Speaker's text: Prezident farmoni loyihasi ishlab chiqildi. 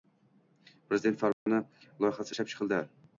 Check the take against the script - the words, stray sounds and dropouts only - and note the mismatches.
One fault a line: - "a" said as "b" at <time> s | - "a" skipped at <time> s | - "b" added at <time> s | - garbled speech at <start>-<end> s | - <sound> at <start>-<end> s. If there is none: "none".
- dropout at 1.3-1.5 s